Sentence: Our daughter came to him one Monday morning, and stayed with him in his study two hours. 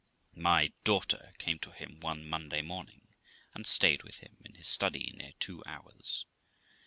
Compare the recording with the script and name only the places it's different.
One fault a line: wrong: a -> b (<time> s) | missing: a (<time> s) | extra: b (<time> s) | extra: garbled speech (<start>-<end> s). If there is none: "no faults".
wrong: Our -> My (0.3 s)
extra: near (5.2 s)